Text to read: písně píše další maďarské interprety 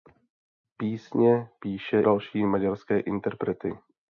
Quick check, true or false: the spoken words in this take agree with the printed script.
true